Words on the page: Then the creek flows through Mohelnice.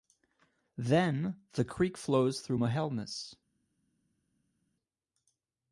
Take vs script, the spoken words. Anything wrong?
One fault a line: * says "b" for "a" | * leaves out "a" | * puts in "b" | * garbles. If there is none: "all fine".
all fine